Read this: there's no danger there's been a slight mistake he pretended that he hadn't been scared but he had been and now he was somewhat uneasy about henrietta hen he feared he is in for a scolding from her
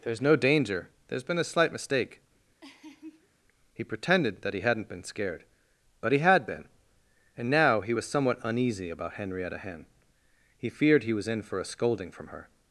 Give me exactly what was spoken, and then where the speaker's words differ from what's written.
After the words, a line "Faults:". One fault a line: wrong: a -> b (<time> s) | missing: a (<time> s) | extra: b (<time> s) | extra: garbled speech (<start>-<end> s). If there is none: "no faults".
there's no danger there's been a slight mistake he pretended that he hadn't been scared but he had been and now he was somewhat uneasy about henrietta hen he feared he was in for a scolding from her
Faults:
wrong: is -> was (11.2 s)